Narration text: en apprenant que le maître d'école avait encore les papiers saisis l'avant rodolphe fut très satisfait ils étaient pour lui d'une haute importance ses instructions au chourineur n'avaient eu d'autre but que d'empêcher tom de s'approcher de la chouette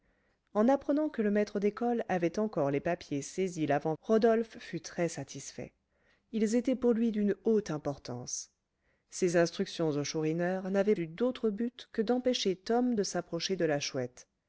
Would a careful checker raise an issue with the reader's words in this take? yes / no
no